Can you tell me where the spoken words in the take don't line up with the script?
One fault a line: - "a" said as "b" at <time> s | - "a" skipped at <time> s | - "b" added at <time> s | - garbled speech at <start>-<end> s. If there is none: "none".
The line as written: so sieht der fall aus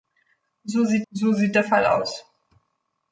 - "so sieht" added at 1.1 s